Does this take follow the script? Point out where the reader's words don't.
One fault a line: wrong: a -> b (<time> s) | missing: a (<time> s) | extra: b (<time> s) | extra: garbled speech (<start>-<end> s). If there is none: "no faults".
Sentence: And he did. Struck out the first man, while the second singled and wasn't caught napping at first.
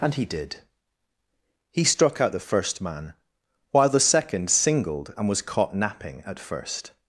extra: He (1.7 s)
wrong: wasn't -> was (5.3 s)